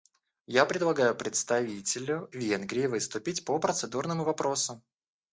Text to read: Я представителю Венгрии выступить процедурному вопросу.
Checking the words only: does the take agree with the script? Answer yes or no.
no